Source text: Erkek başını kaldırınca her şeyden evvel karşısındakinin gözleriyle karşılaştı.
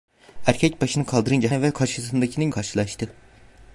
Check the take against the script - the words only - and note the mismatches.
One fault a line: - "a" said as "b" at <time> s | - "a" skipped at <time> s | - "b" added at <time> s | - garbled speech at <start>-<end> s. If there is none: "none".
- "her şeyden" skipped at 1.5 s
- "gözleriyle" skipped at 2.5 s